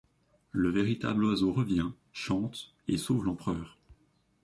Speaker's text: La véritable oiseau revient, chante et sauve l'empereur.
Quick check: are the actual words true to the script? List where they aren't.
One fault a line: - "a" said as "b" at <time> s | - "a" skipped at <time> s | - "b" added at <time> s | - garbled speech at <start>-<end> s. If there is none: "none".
- "La" said as "Le" at 0.5 s